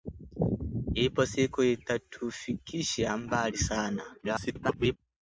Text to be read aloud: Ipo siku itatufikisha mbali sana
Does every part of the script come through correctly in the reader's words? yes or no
no